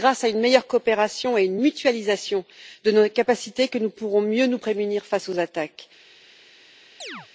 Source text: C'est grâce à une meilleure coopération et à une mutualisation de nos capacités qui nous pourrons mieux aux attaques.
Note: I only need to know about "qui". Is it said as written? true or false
false